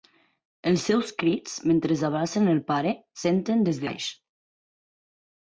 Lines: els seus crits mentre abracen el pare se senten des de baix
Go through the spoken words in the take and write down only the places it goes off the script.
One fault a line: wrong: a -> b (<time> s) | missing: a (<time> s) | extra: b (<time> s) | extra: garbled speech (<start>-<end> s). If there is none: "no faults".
missing: se (3.0 s)
missing: de (3.8 s)